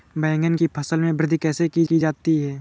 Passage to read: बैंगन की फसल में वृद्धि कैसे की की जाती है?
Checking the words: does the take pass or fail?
pass